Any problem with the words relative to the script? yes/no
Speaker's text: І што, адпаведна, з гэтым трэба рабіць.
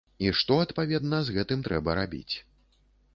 no